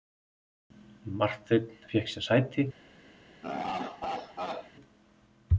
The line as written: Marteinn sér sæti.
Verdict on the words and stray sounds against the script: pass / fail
fail